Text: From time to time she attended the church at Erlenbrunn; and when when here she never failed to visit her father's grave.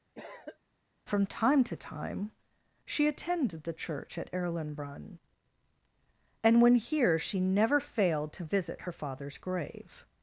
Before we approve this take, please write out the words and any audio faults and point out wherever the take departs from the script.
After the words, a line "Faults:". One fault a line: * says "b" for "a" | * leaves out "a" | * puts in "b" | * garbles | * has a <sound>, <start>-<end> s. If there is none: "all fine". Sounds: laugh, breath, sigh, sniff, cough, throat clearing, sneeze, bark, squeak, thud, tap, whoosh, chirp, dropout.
From time to time she attended the church at Erlenbrunn; and when here she never failed to visit her father's grave.
Faults:
* has a cough, 0.1-0.6 s
* leaves out "when"